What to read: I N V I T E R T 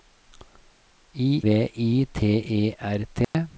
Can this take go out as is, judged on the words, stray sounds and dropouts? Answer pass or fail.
fail